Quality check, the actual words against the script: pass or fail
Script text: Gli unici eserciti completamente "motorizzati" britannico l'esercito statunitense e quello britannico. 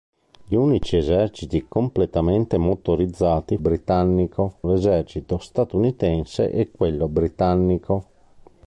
pass